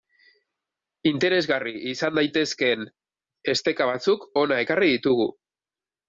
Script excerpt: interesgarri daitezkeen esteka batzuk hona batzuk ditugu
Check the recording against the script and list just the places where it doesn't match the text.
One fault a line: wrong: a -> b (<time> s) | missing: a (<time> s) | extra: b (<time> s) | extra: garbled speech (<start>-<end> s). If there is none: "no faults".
extra: izan (1.9 s)
wrong: batzuk -> ekarri (4.7 s)